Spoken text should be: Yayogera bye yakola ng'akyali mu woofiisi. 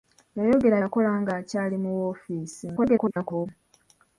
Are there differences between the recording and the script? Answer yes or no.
yes